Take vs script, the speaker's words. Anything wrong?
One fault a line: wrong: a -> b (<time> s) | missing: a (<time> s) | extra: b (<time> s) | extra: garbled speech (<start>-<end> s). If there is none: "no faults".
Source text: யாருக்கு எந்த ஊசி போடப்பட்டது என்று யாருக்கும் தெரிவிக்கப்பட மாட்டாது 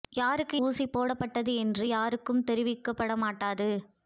missing: எந்த (0.6 s)